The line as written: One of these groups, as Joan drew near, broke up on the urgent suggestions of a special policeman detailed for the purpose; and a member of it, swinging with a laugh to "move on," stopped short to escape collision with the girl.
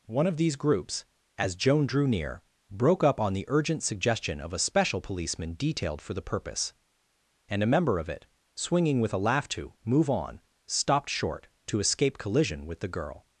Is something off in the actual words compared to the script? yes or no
yes